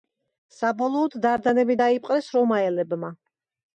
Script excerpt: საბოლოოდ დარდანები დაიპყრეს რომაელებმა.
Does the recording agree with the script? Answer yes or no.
yes